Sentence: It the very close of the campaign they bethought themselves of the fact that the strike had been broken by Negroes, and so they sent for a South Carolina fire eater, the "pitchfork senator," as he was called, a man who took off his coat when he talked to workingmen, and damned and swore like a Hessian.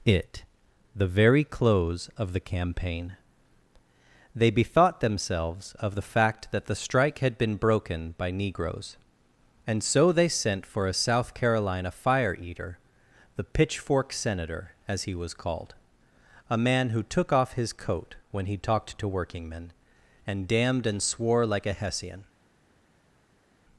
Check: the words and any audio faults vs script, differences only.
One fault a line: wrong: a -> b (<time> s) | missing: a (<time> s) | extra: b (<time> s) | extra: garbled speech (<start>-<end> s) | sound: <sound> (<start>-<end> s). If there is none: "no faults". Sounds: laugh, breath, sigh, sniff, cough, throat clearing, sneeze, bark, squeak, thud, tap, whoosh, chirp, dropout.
no faults